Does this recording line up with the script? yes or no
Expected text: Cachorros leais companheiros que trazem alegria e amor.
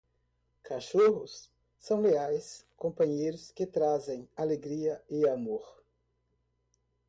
no